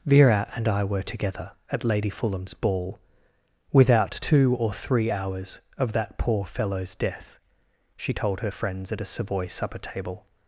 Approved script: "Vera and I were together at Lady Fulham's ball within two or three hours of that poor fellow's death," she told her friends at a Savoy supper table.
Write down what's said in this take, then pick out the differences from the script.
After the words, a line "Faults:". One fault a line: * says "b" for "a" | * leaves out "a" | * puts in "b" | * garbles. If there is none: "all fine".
"Vera and I were together at Lady Fulham's ball without two or three hours of that poor fellow's death," she told her friends at a Savoy supper table.
Faults:
* says "without" for "within"